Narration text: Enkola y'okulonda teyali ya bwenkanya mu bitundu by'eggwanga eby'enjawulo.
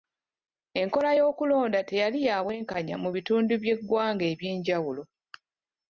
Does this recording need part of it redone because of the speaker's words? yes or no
no